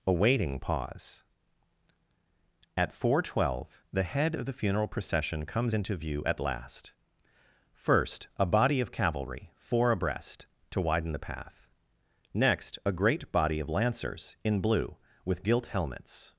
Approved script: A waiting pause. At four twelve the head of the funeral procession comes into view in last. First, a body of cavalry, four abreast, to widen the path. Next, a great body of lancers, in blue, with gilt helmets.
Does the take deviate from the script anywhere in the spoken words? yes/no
yes